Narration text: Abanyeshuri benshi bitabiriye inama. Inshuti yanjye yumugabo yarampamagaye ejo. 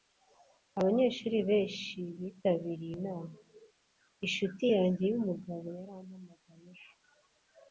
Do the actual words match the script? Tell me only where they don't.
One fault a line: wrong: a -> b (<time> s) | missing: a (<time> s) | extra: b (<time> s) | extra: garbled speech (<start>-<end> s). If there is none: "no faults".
no faults